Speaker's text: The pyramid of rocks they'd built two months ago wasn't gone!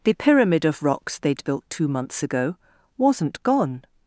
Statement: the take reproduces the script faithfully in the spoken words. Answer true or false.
true